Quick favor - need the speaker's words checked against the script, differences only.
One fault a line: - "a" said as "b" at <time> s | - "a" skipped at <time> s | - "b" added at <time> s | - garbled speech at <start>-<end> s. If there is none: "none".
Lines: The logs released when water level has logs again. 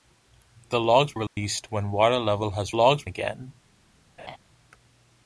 none